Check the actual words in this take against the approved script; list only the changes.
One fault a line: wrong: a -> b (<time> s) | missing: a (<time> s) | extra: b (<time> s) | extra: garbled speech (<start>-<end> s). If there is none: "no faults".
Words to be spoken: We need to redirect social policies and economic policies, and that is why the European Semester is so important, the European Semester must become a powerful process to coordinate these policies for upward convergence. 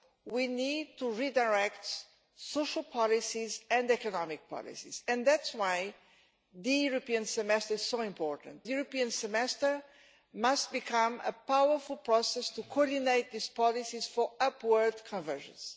no faults